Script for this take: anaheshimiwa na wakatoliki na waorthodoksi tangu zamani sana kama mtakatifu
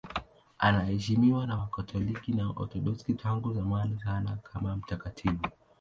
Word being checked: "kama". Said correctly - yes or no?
yes